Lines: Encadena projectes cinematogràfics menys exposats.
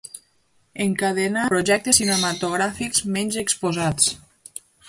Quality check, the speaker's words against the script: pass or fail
pass